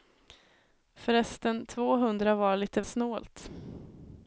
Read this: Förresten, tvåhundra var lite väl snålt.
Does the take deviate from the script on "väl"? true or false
true